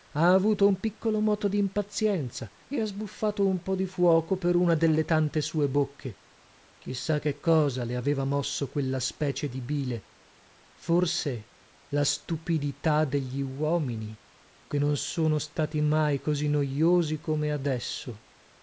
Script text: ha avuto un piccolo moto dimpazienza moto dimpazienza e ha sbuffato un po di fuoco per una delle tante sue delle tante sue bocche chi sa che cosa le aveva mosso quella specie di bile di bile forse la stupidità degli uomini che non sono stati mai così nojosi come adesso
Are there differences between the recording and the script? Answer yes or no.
yes